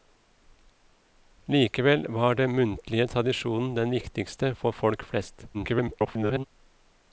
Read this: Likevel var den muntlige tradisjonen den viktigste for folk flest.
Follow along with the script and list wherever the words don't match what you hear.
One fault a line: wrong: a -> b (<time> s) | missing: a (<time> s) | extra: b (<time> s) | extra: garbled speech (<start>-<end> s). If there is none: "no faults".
extra: garbled speech (5.5-6.4 s)